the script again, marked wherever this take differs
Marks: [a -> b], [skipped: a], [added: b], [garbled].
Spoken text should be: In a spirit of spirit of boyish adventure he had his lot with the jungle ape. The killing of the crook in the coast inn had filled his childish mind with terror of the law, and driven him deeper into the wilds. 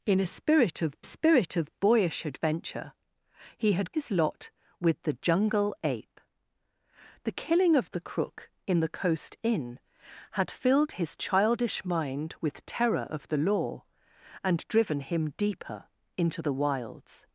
In a spirit of spirit of boyish adventure he had his lot with the jungle ape. The killing of the crook in the coast inn had filled his childish mind with terror of the law, and driven him deeper into the wilds.